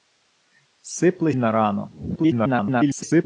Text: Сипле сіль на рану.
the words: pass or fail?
fail